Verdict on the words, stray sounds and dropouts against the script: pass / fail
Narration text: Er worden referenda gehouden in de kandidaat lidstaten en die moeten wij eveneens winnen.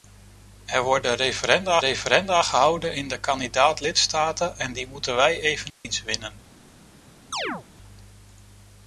fail